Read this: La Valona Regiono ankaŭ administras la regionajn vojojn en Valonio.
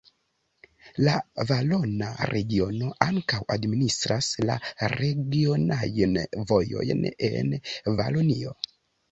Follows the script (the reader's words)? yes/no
yes